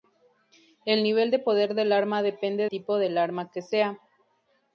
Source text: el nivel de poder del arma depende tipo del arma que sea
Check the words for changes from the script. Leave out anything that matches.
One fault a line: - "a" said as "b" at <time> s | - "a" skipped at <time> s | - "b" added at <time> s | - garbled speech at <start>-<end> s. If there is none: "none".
none